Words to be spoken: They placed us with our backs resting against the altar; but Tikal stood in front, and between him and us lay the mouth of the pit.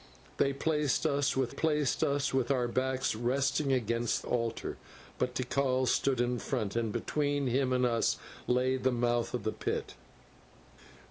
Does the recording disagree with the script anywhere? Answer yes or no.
yes